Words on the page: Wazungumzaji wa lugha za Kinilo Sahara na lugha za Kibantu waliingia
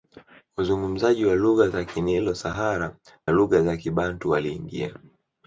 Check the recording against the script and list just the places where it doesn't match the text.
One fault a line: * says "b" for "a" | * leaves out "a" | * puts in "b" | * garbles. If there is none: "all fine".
* leaves out "na"